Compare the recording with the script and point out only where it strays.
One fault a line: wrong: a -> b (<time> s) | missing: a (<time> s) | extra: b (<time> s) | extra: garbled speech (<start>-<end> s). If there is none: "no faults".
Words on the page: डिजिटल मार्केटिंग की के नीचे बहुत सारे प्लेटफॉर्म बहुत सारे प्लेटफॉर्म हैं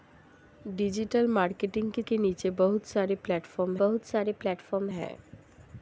no faults